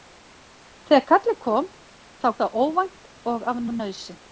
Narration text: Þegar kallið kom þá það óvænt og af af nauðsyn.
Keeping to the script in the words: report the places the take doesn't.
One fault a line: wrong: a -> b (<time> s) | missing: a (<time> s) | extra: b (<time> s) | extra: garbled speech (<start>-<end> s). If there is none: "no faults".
no faults